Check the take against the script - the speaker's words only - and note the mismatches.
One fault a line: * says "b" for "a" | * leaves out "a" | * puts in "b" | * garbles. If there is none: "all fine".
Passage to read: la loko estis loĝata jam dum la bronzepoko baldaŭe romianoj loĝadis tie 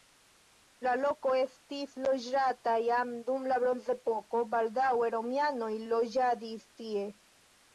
all fine